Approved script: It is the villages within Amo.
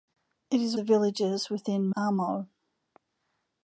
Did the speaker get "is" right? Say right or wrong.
right